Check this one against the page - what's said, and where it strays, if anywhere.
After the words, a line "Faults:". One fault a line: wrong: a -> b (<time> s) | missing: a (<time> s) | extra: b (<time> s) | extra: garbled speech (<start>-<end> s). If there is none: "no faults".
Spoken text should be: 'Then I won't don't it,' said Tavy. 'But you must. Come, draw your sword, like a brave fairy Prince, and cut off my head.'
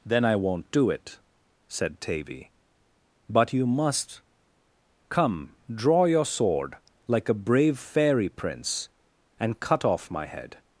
'Then I won't do it,' said Tavy. 'But you must. Come, draw your sword, like a brave fairy Prince, and cut off my head.'
Faults:
wrong: don't -> do (0.7 s)